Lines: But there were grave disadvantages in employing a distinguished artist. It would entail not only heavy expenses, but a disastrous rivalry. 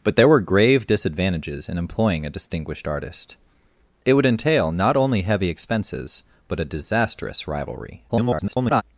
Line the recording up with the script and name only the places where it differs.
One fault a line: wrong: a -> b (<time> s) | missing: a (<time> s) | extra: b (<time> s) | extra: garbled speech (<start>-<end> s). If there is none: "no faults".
extra: garbled speech (8.1-8.8 s)